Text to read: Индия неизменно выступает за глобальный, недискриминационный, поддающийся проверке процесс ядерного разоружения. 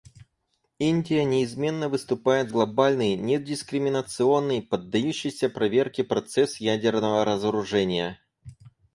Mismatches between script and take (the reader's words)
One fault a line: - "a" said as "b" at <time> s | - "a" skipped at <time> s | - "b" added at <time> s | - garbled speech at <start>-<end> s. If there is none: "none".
- "за" skipped at 2.5 s